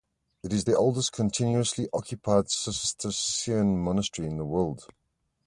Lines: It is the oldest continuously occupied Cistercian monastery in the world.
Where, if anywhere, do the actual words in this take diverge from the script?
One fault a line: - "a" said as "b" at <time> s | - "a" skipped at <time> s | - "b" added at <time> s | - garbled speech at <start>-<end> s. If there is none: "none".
none